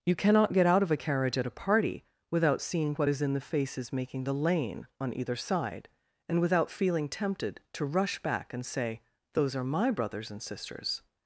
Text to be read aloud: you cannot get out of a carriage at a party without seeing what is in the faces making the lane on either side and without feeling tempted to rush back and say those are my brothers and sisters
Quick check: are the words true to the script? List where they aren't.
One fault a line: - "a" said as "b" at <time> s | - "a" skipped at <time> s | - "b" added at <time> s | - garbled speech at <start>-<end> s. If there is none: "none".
none